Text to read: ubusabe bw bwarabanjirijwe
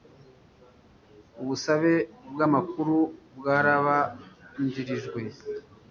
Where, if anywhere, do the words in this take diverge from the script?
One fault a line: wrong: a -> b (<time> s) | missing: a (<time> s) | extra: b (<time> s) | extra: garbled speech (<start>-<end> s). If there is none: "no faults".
extra: amakuru (2.5 s)